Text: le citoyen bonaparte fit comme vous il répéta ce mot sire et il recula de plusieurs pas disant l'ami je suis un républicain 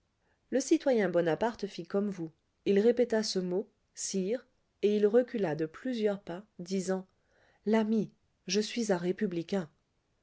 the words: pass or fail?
pass